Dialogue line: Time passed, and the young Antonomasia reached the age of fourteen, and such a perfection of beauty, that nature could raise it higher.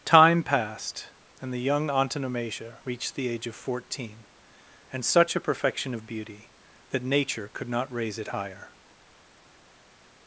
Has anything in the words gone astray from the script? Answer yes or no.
yes